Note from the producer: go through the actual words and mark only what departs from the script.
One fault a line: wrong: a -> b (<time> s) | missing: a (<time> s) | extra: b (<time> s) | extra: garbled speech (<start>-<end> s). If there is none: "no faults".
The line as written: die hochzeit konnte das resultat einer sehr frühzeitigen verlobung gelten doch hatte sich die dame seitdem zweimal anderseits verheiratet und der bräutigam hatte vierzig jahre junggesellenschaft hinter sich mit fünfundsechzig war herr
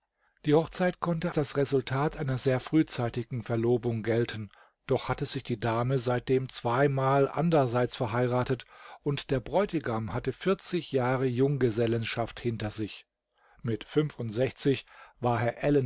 no faults